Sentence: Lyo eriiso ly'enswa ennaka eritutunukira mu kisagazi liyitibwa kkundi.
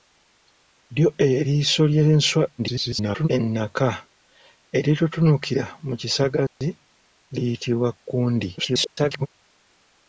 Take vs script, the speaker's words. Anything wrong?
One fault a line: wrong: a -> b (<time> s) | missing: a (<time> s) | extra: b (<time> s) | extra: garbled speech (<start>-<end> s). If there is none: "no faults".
extra: garbled speech (2.6-3.3 s)
extra: garbled speech (8.6-9.3 s)